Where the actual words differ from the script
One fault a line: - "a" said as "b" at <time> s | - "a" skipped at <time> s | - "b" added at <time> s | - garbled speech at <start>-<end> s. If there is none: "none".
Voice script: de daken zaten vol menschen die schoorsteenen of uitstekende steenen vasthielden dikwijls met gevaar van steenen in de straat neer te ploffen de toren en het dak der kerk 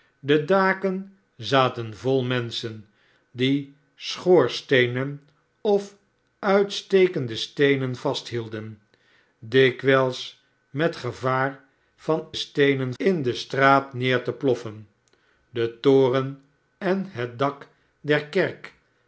none